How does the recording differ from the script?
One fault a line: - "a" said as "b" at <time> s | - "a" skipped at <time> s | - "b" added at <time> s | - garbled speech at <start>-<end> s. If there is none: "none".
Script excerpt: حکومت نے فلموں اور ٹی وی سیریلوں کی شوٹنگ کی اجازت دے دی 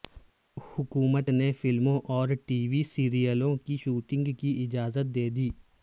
none